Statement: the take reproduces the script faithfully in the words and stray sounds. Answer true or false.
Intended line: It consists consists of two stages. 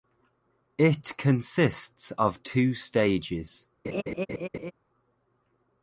false